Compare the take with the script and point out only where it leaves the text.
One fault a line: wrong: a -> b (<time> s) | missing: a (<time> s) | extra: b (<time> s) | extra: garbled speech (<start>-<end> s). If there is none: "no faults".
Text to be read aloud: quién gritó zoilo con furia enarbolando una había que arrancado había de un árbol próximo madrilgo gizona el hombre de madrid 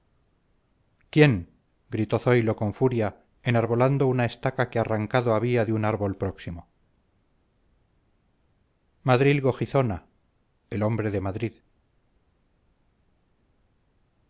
wrong: había -> estaca (4.2 s)